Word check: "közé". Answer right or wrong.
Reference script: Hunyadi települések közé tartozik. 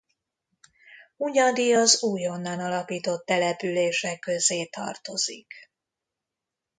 right